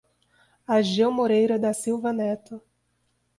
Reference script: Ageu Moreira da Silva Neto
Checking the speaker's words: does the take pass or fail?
pass